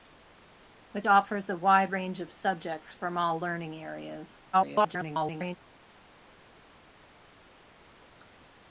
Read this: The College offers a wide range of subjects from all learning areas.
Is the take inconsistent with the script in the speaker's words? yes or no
yes